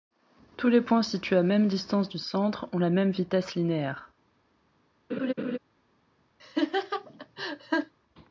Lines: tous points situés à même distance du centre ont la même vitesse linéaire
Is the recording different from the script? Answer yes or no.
yes